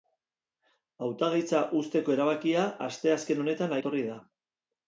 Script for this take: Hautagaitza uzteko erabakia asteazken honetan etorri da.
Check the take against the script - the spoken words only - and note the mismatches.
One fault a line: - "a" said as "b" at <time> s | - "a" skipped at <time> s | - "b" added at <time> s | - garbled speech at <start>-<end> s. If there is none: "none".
none